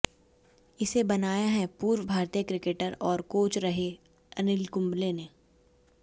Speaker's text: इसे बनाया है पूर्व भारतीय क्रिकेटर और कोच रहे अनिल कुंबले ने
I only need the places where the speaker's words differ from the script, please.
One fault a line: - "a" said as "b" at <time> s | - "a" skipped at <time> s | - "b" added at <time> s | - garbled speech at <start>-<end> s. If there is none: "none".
none